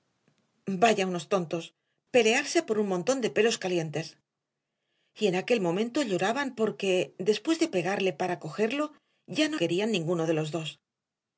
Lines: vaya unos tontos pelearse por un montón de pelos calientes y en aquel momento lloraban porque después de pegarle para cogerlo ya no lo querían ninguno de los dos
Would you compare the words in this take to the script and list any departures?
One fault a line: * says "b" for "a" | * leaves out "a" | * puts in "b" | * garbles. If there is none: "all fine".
* leaves out "lo"